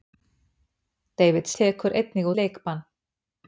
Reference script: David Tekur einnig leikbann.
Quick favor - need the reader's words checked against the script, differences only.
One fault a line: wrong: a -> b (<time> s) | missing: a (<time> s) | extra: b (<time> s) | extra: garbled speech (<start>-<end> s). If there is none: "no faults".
no faults